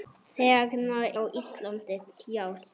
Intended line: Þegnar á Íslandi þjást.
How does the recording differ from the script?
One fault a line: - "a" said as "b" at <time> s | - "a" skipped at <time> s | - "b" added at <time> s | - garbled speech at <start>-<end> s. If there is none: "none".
none